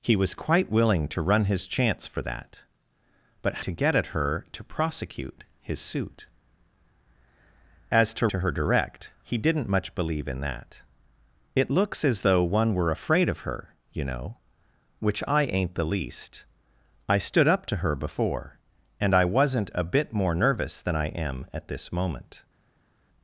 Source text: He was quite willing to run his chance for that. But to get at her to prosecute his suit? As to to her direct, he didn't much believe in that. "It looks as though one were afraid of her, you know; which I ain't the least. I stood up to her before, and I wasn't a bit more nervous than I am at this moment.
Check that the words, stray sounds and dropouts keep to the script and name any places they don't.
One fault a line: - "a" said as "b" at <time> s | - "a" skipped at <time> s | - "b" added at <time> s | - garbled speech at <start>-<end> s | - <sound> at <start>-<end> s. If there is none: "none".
none